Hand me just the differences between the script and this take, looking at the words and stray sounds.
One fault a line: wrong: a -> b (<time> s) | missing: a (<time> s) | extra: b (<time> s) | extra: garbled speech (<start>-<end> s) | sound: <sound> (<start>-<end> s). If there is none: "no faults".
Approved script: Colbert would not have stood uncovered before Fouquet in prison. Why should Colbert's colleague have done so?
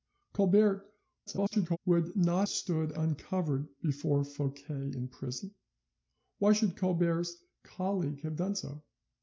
extra: garbled speech (1.3-1.8 s)
missing: have (2.5 s)